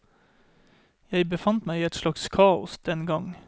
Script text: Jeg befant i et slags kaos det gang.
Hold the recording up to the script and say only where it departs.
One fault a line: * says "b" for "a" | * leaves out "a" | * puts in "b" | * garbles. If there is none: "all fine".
* puts in "meg"
* says "den" for "det"